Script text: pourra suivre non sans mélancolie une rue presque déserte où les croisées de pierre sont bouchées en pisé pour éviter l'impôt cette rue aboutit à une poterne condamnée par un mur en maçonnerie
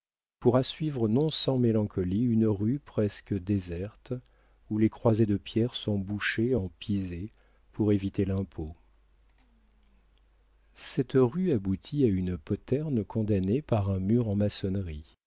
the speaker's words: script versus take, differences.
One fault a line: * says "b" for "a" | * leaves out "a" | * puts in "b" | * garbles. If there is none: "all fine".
all fine